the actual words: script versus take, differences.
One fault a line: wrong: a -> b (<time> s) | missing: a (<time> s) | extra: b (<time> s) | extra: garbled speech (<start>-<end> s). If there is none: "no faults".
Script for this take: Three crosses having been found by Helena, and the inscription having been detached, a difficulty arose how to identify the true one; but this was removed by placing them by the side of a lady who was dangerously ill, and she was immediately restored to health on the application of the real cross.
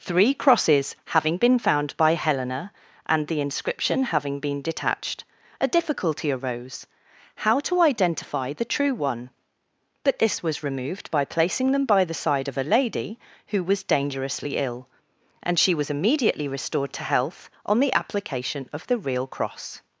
no faults